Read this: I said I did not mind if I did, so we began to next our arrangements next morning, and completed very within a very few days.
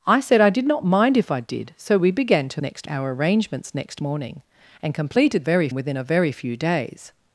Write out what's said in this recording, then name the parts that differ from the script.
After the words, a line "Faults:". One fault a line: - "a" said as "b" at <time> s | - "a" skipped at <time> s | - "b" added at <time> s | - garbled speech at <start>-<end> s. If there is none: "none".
I said I did not mind if I did, so we began to next our arrangements next morning, and completed very within a very few days.
Faults:
none